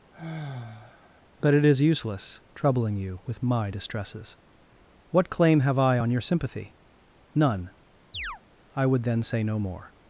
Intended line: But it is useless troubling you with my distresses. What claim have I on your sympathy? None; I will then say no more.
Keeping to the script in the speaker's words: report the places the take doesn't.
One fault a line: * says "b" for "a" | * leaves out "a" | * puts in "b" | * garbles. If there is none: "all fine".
* says "would" for "will"